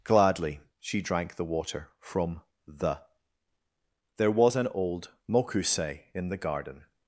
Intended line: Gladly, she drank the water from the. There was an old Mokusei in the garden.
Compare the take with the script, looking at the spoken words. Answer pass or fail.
pass